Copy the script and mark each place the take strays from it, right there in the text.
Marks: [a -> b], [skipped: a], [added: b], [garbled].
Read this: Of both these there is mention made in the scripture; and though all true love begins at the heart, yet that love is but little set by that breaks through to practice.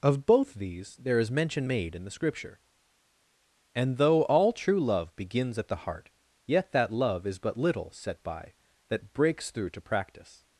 Of both these there is mention made in the scripture; and though all true love begins at the heart, yet that love is but little set by that breaks through to practice.